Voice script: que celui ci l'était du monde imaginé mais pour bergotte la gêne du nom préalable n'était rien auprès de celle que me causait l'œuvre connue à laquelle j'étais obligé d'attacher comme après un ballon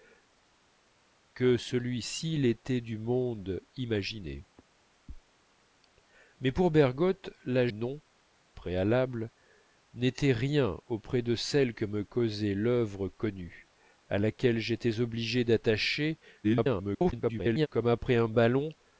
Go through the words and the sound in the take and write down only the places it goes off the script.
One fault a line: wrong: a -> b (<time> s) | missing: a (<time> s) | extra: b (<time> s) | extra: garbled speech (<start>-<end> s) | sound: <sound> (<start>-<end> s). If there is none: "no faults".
missing: gêne du (7.7 s)
extra: garbled speech (16.4-17.7 s)